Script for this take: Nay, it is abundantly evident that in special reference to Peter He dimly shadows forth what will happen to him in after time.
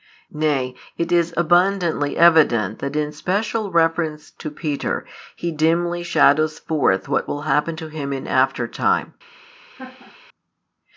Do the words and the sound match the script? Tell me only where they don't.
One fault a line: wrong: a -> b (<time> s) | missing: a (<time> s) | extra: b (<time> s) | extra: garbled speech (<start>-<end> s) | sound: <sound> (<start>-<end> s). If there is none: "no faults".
sound: laugh (9.8-10.2 s)